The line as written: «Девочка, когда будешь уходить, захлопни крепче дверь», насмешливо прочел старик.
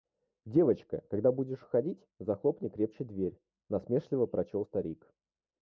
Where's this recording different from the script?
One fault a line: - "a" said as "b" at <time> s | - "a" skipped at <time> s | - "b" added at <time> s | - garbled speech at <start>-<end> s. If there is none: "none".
none